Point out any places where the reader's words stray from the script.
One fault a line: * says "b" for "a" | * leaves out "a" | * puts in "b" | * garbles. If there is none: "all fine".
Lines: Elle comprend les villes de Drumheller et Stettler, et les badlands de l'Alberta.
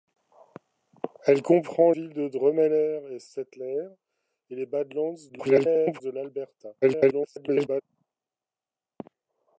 * leaves out "les"
* garbles
* garbles